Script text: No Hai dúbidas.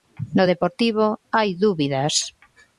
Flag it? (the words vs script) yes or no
yes